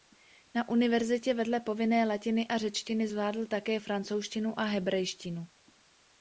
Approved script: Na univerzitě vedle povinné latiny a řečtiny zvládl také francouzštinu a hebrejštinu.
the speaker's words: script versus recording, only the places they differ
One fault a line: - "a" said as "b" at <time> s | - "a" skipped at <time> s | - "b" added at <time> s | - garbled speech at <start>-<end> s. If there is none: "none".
none